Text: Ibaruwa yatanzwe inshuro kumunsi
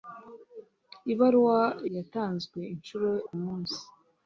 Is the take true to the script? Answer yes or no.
yes